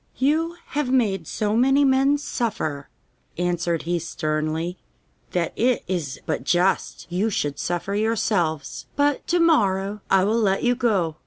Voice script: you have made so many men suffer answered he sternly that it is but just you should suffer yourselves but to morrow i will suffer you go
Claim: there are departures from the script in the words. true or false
true